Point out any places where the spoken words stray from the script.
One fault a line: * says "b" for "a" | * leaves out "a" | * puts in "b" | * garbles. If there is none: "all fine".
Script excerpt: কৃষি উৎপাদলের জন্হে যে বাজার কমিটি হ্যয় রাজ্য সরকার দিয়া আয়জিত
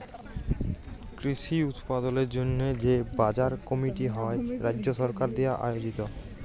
all fine